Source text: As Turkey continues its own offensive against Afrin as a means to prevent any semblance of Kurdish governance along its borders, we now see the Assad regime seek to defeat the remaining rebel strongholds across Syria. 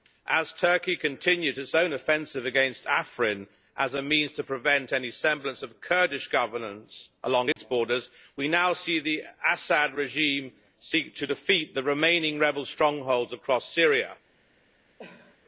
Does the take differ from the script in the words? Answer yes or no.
no